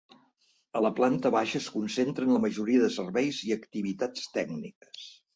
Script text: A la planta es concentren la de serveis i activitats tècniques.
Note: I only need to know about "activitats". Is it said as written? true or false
true